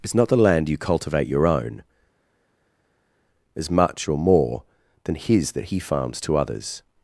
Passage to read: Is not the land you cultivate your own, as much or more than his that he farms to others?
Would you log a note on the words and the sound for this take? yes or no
no